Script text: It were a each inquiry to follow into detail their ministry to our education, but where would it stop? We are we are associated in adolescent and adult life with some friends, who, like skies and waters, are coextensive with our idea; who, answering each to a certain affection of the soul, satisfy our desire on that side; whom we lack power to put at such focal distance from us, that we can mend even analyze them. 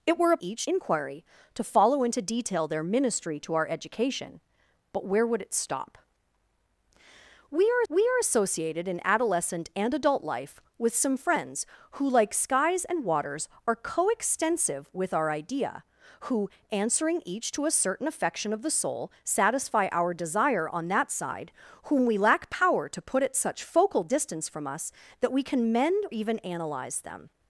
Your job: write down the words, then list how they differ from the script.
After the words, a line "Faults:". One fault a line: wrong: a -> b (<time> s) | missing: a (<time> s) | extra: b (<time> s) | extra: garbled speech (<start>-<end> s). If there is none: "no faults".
It were a each inquiry to follow into detail their ministry to our education, but where would it stop? We are we are associated in adolescent and adult life with some friends, who, like skies and waters, are coextensive with our idea; who, answering each to a certain affection of the soul, satisfy our desire on that side; whom we lack power to put at such focal distance from us, that we can mend even analyze them.
Faults:
no faults